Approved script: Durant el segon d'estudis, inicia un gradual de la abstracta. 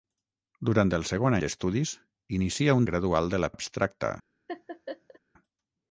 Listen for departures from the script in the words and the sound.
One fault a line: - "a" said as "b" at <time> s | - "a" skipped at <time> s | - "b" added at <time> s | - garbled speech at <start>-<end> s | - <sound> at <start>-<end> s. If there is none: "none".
- laugh at 4.5-5.2 s